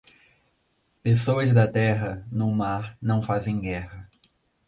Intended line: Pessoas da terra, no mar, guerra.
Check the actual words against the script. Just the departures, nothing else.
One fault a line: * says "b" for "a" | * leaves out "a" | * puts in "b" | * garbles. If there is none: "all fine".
* puts in "não fazem"